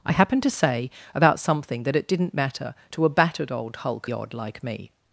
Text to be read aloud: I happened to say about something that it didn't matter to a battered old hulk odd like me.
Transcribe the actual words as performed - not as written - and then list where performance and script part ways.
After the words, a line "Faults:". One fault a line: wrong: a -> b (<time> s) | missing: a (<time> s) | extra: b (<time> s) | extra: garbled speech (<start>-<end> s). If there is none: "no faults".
I happened to say about something that it didn't matter to a battered old hulk odd like me.
Faults:
no faults